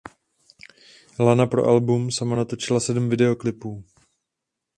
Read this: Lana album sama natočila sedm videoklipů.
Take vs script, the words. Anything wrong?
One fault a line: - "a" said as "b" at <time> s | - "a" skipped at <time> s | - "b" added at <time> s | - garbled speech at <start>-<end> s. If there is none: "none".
- "pro" added at 1.4 s